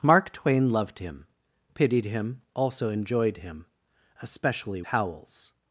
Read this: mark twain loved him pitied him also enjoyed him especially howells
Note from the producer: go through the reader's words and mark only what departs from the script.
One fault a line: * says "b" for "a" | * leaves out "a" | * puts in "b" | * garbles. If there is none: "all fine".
all fine